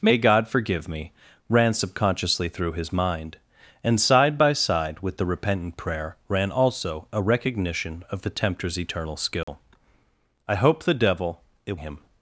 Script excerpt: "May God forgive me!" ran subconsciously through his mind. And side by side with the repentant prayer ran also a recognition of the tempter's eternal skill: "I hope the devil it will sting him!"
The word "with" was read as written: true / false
true